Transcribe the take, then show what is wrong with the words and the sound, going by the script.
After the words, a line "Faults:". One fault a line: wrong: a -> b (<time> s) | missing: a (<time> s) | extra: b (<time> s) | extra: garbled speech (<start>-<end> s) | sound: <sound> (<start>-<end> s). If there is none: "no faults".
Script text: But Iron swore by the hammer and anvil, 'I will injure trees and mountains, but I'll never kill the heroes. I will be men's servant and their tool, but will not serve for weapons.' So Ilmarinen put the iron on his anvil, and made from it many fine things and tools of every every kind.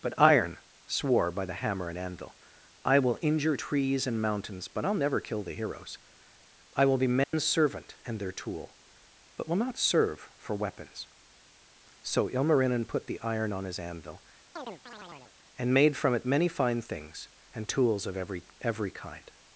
But Iron swore by the hammer and anvil, 'I will injure trees and mountains, but I'll never kill the heroes. I will be men's servant and their tool, but will not serve for weapons.' So Ilmarinen put the iron on his anvil, and made from it many fine things and tools of every every kind.
Faults:
sound: dropout (7.2-7.3 s)
sound: chirp (14.6-15.3 s)